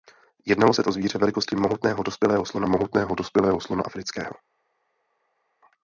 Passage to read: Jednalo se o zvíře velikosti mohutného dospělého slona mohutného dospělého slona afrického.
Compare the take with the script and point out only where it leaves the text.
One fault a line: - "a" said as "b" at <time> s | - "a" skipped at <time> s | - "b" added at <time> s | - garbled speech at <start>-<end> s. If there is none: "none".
none